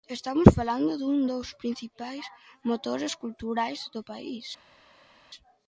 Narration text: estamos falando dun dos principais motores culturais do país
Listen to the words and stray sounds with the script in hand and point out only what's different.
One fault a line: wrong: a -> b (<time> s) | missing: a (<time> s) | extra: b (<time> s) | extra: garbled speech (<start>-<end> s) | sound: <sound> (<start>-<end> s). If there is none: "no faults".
no faults